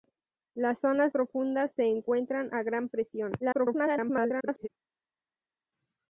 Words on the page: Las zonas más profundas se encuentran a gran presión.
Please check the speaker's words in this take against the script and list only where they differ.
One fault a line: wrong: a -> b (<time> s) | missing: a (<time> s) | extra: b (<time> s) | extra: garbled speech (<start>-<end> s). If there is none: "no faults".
missing: más (1.1 s)
extra: garbled speech (3.4-4.7 s)